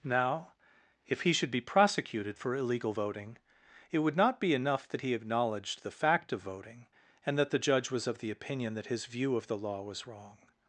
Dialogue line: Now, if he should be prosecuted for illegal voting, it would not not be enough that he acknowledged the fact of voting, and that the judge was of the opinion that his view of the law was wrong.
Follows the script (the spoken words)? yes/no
no